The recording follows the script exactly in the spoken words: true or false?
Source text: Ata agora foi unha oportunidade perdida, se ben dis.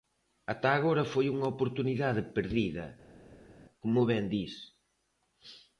false